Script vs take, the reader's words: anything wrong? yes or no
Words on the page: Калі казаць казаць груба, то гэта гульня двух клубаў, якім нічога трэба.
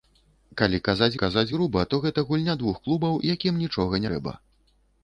no